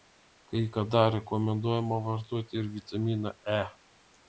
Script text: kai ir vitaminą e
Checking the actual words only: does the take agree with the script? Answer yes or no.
no